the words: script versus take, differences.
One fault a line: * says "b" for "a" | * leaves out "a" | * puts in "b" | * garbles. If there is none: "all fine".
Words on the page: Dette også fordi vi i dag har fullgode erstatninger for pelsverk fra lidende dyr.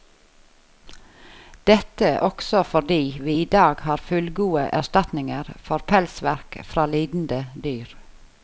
all fine